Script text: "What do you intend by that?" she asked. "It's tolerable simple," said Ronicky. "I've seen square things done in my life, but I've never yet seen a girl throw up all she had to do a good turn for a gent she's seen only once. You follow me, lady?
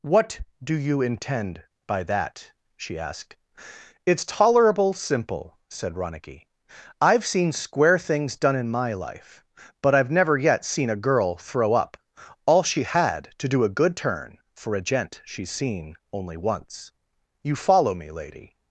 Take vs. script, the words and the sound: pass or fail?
pass